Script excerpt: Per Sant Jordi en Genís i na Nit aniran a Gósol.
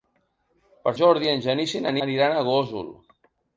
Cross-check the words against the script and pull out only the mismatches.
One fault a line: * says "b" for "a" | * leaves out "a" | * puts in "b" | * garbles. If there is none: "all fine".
* leaves out "Sant"
* leaves out "Nit"